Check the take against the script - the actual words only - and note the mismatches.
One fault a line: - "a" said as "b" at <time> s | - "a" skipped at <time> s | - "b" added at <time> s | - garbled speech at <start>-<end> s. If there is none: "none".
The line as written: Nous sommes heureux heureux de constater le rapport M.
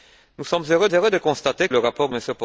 none